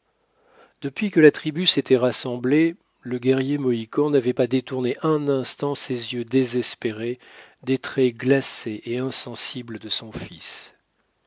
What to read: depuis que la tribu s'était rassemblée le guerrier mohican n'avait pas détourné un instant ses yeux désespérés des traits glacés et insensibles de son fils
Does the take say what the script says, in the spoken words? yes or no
yes